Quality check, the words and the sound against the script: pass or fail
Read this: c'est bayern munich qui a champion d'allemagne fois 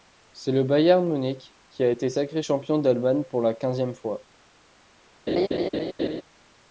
fail